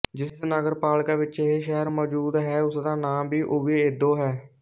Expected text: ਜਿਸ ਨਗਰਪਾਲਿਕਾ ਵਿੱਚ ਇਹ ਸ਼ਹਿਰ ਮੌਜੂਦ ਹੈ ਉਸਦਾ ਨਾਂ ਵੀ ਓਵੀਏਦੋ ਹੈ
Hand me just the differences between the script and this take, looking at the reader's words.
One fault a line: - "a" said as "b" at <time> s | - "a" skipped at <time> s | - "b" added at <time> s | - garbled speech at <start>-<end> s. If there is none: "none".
none